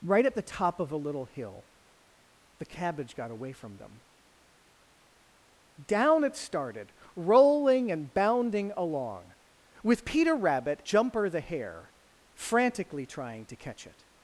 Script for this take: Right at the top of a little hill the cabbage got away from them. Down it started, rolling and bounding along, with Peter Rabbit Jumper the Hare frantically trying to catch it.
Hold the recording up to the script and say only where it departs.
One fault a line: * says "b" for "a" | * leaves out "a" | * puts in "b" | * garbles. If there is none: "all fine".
all fine